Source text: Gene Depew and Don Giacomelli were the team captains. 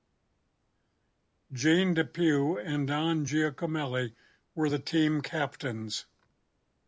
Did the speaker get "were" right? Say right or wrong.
right